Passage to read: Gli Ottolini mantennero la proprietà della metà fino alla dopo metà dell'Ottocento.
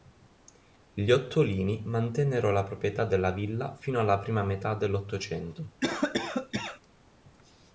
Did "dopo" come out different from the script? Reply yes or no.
yes